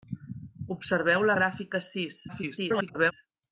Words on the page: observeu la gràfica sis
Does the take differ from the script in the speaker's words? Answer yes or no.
yes